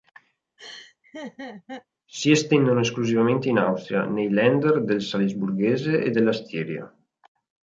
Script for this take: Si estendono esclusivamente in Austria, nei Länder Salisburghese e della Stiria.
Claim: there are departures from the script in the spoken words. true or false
true